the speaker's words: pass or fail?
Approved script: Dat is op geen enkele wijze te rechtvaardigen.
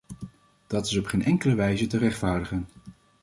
pass